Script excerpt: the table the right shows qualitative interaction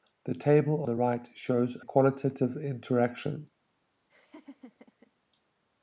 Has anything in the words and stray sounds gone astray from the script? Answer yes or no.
yes